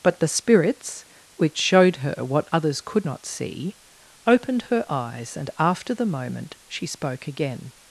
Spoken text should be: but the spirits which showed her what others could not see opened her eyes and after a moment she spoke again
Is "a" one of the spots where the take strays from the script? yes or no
yes